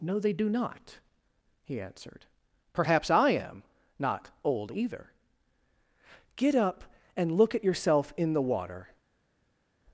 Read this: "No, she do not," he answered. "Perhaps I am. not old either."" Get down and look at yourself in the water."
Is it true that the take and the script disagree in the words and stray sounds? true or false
true